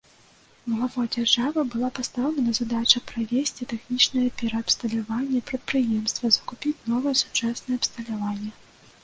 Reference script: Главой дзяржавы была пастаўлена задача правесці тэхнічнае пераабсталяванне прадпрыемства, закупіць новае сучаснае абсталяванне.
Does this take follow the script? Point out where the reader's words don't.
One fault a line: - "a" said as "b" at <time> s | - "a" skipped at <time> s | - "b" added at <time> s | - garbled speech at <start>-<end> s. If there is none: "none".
none